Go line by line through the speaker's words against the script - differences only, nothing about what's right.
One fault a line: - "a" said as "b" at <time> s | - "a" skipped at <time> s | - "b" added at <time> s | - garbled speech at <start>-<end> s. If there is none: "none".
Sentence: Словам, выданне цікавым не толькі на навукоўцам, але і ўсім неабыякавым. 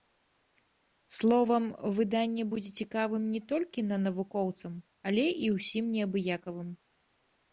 - "будзе" added at 2.5 s